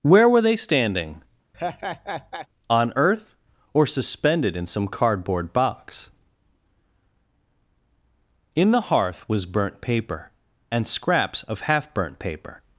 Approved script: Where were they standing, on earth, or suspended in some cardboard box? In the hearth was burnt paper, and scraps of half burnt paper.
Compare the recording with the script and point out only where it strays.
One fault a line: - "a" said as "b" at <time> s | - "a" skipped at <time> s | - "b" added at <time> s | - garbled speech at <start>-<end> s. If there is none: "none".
none